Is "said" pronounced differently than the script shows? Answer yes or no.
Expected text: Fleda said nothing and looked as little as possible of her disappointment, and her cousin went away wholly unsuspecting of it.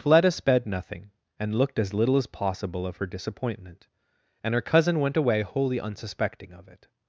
yes